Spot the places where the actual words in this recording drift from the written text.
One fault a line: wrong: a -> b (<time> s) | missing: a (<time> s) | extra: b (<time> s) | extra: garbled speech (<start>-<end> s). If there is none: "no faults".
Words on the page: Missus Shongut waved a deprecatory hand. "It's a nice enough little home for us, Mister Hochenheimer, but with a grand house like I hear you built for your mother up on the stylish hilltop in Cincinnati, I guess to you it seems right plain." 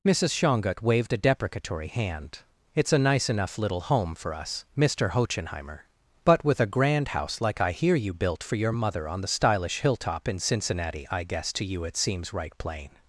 missing: up (9.1 s)